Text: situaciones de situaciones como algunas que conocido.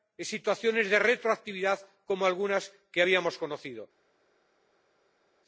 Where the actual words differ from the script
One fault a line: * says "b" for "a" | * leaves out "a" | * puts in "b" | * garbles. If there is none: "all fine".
* says "retroactividad" for "situaciones"
* puts in "habíamos"